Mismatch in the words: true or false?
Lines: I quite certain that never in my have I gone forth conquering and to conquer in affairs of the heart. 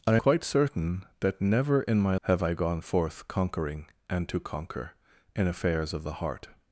false